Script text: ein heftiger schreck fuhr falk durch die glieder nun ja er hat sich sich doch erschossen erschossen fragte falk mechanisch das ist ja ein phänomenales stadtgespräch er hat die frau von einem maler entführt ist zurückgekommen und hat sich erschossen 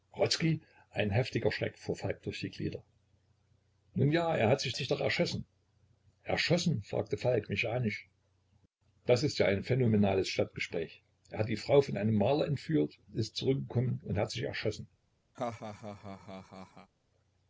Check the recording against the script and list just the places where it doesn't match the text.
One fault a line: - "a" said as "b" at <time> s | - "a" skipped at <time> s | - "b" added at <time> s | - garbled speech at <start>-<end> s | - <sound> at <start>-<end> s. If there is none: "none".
- laugh at 15.3-16.9 s